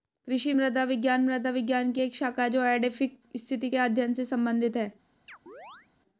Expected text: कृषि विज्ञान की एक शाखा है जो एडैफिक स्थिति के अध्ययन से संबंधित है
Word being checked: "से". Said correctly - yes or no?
yes